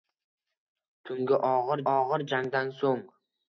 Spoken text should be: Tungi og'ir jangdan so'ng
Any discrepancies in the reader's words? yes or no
yes